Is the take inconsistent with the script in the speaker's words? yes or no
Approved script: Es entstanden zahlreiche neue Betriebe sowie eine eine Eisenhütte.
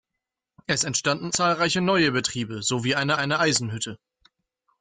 no